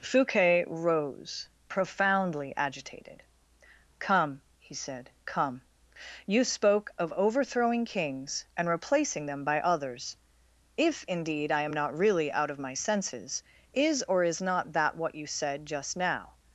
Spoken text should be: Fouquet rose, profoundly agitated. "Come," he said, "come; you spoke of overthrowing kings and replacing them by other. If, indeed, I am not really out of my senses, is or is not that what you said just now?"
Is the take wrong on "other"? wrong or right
wrong